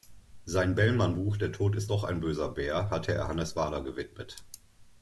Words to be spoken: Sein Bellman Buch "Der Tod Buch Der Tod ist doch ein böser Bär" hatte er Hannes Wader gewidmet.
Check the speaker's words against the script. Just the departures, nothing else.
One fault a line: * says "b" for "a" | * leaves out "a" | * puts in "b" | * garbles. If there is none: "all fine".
* leaves out "Buch Der Tod"